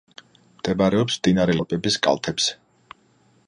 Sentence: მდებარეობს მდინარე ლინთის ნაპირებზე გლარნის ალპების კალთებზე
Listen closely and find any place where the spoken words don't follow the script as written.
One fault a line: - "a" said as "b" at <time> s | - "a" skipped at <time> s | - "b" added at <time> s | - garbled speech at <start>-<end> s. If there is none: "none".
- "ლინთის ნაპირებზე გლარნის" skipped at 1.6 s